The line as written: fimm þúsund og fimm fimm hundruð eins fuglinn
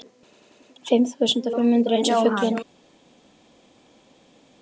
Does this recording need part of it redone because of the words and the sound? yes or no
yes